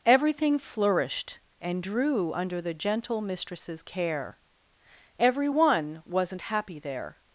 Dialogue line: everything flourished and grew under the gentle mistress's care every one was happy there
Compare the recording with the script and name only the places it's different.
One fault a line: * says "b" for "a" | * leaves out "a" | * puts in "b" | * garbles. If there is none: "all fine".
* says "drew" for "grew"
* says "wasn't" for "was"